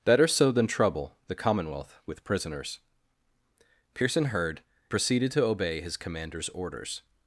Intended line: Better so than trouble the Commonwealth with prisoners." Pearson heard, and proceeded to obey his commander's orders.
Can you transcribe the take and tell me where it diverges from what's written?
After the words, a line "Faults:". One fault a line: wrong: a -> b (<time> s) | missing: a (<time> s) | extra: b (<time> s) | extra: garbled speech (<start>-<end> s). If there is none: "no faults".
Better so than trouble the Commonwealth with prisoners." Pearson heard, proceeded to obey his commander's orders.
Faults:
missing: and (4.6 s)